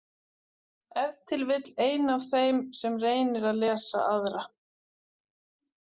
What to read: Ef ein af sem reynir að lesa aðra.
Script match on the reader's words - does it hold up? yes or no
no